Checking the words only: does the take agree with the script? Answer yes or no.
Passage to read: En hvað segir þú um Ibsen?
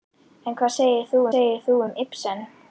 no